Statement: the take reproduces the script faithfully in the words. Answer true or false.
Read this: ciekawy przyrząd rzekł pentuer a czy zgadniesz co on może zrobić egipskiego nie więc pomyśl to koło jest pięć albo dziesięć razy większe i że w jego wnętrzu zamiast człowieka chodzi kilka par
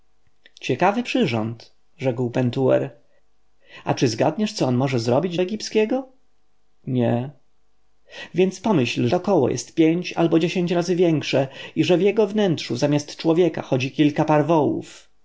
true